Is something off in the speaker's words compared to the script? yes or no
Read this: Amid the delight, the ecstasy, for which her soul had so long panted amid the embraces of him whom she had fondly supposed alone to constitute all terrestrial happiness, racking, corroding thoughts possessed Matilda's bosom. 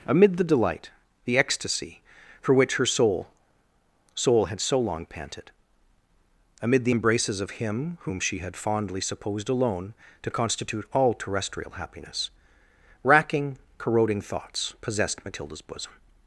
yes